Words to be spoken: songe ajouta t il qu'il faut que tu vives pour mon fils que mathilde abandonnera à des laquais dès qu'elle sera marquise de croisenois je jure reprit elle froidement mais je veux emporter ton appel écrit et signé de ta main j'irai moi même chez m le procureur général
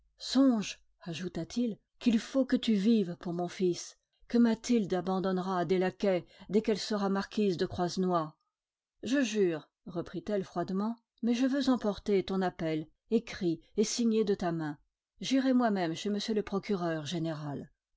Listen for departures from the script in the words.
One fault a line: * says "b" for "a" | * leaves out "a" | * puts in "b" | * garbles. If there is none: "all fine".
all fine